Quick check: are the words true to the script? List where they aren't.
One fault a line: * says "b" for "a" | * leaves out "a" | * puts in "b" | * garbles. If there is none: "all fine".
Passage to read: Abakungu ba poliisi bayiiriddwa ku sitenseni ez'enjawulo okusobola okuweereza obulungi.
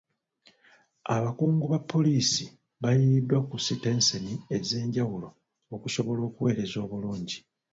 all fine